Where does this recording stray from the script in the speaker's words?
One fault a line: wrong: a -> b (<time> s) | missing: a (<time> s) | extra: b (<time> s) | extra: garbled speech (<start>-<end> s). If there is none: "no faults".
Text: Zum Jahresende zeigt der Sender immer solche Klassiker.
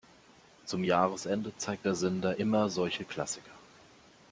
no faults